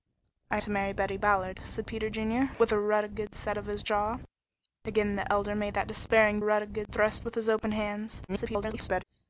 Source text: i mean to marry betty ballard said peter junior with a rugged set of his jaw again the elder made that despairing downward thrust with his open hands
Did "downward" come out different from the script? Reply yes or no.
yes